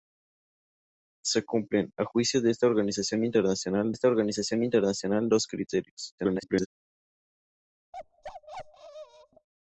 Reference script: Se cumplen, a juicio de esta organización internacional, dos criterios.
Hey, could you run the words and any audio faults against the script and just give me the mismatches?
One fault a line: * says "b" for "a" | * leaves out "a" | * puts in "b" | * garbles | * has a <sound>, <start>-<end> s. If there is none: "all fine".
* puts in "esta organización internacional"
* garbles
* has a bark, 7.9-9.5 s